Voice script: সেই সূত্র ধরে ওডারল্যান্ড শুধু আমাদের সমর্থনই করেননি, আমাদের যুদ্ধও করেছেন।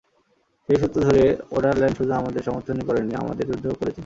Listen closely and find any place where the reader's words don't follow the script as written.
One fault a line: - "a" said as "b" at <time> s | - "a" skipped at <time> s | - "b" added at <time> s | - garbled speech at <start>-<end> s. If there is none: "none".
none